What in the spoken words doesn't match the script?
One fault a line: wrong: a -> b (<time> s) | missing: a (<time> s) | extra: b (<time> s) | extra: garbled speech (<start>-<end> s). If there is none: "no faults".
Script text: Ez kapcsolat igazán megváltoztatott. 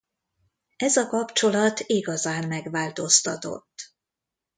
extra: a (1.0 s)